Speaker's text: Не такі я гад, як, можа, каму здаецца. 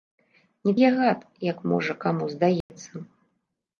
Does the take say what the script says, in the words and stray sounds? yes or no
no